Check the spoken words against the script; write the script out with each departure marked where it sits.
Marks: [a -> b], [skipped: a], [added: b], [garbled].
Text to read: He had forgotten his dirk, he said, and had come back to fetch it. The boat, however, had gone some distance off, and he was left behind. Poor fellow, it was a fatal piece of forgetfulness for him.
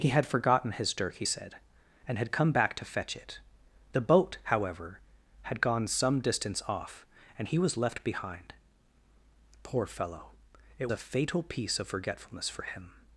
He had forgotten his dirk, he said, and had come back to fetch it. The boat, however, had gone some distance off, and he was left behind. Poor fellow, it [skipped: was] a fatal piece of forgetfulness for him.